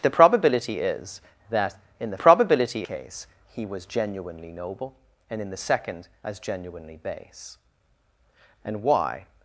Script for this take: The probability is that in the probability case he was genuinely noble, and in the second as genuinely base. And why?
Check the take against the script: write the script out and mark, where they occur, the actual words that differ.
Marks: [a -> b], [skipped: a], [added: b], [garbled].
The probability is that in the probability case he was genuinely noble, and in the second as genuinely base. And why?